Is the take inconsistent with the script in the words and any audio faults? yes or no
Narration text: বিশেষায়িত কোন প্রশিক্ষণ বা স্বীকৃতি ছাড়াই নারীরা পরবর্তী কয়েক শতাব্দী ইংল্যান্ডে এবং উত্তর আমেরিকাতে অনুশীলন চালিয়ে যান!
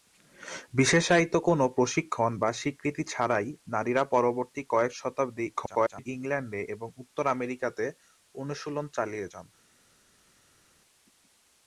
yes